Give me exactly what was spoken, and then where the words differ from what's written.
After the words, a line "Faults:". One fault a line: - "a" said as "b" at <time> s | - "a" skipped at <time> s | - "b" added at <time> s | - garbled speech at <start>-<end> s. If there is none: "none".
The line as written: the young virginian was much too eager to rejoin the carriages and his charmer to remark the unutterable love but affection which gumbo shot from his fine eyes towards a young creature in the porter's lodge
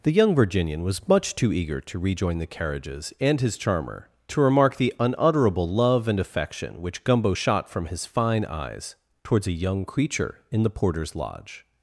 the young virginian was much too eager to rejoin the carriages and his charmer to remark the unutterable love and affection which gumbo shot from his fine eyes towards a young creature in the porter's lodge
Faults:
- "but" said as "and" at 6.1 s